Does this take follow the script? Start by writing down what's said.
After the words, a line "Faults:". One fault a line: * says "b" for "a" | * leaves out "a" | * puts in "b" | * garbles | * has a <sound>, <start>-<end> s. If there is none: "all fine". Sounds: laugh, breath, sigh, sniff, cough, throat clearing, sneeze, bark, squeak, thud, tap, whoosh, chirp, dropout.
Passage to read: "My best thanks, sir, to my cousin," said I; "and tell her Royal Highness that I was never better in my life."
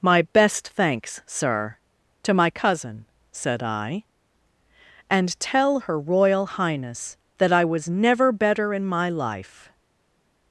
"My best thanks, sir, to my cousin," said I; "and tell her Royal Highness that I was never better in my life."
Faults:
all fine